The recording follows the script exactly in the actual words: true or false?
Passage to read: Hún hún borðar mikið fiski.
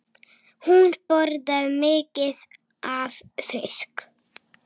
false